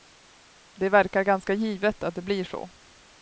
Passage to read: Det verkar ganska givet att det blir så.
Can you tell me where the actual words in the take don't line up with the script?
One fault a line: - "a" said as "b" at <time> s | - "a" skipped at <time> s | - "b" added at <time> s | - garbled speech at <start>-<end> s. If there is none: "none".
none